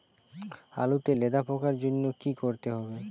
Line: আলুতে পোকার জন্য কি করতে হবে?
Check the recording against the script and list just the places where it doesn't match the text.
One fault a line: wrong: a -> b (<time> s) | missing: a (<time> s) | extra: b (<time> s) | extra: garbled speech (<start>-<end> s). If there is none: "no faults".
extra: লেদা (1.1 s)